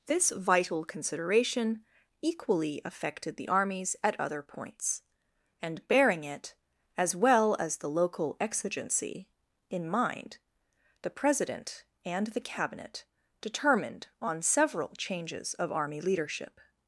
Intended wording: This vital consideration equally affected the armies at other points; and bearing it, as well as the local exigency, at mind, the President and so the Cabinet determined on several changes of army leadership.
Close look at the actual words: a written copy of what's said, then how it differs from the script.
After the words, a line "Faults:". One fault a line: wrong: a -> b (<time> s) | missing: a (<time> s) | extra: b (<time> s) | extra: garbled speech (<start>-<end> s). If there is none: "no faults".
This vital consideration equally affected the armies at other points; and bearing it, as well as the local exigency, in mind, the President and the Cabinet determined on several changes of army leadership.
Faults:
wrong: at -> in (9.7 s)
missing: so (12.3 s)